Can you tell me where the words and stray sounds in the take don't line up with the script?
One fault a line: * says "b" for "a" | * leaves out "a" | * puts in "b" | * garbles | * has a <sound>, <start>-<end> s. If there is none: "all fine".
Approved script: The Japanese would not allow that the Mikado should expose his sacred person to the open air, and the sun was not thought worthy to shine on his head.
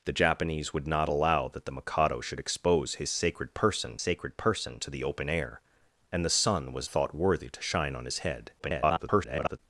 * puts in "sacred person"
* leaves out "not"
* garbles